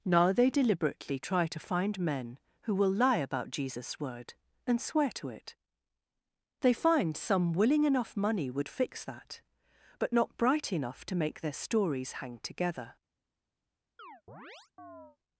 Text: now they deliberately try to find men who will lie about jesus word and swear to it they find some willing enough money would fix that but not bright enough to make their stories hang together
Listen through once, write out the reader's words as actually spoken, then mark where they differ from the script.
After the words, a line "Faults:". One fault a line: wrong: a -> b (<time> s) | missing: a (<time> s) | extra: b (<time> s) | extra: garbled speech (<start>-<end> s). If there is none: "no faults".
now they deliberately try to find men who will lie about jesus word and swear to it they find some willing enough money would fix that but not bright enough to make their stories hang together
Faults:
no faults